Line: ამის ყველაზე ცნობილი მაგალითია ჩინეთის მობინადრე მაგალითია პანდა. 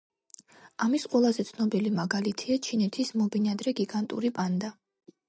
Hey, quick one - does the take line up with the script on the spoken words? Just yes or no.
no